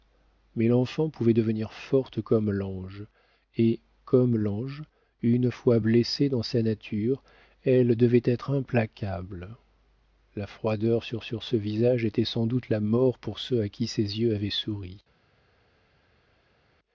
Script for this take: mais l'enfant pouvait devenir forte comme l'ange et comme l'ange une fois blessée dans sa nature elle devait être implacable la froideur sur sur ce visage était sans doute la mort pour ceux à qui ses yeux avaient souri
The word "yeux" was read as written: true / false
true